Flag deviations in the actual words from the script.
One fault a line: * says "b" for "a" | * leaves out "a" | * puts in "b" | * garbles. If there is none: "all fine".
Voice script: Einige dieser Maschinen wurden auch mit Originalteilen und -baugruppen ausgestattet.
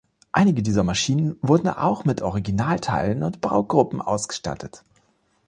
all fine